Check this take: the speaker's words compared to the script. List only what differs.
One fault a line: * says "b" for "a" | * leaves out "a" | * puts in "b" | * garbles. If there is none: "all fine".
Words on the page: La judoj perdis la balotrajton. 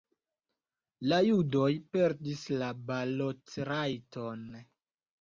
all fine